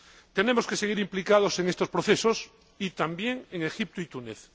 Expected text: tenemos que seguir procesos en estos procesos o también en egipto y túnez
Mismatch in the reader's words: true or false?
true